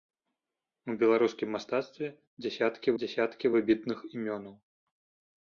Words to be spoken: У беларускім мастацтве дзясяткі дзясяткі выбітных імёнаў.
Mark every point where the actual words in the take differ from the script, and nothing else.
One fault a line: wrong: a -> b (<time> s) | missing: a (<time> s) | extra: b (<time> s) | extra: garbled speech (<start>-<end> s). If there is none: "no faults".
no faults